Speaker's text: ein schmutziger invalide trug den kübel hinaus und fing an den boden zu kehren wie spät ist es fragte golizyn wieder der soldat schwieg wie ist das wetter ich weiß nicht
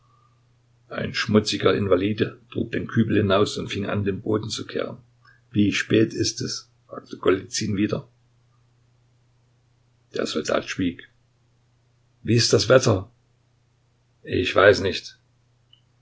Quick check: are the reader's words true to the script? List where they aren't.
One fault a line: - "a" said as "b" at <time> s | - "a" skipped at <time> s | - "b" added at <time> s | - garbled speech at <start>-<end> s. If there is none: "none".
none